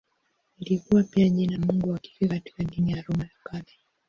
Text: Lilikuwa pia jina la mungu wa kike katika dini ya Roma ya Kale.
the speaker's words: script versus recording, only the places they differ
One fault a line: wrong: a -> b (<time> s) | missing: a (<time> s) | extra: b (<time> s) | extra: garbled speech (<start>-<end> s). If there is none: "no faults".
missing: la (1.6 s)